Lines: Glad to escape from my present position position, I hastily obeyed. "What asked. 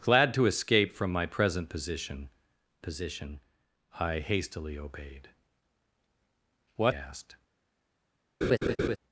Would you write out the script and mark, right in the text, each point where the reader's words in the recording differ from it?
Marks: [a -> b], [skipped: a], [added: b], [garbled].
Glad to escape from my present position position, I hastily obeyed. "What asked.